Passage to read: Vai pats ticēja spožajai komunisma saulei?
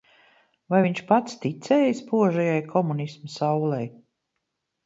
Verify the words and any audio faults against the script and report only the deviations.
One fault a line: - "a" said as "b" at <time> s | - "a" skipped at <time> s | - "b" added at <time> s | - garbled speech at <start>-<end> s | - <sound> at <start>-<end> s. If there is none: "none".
- "viņš" added at 0.8 s